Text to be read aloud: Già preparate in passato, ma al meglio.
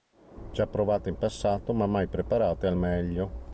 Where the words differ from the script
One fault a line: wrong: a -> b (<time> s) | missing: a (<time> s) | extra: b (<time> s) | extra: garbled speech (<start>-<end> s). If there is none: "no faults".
wrong: preparate -> provate (0.7 s)
extra: mai preparate (1.9 s)